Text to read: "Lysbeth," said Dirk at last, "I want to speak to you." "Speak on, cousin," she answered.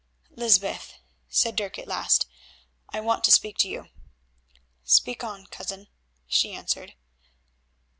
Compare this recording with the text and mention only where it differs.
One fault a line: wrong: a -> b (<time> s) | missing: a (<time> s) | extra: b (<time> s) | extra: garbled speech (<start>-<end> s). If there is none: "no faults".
no faults